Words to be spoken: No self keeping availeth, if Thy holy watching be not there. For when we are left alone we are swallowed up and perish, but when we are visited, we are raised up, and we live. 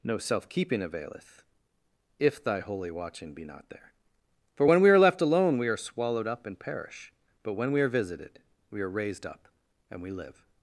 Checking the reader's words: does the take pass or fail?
pass